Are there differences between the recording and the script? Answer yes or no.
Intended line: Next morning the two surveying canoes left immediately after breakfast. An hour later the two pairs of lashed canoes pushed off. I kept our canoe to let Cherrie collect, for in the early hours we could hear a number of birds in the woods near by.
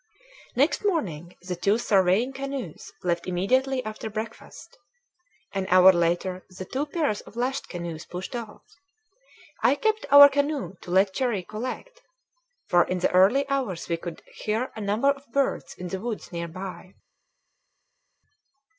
no